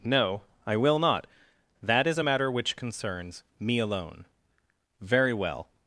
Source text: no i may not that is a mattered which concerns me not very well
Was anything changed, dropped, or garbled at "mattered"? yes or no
yes